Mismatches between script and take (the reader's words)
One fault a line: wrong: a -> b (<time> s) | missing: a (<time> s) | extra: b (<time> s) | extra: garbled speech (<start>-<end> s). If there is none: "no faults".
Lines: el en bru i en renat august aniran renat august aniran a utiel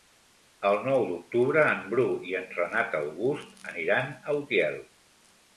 extra: nou d'octubre (0.9 s)
missing: renat august aniran (4.1 s)